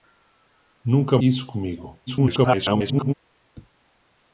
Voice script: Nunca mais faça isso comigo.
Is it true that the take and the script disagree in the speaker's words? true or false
true